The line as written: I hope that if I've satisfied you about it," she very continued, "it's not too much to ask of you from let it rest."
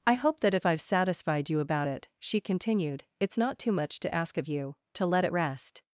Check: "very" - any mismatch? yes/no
yes